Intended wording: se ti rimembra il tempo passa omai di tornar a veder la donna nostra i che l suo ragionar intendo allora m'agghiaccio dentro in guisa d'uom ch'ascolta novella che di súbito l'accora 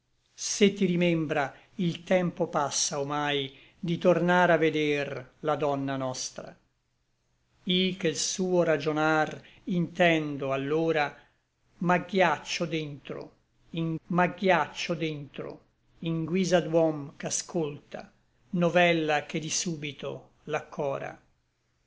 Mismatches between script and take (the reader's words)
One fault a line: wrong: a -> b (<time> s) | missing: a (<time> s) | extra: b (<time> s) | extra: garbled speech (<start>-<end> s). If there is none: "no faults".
extra: m'agghiaccio dentro in (14.1 s)